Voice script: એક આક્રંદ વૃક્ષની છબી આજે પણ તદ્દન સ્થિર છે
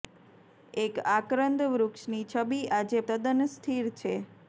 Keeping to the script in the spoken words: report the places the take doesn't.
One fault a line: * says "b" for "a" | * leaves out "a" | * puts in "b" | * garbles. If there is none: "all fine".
* leaves out "પણ"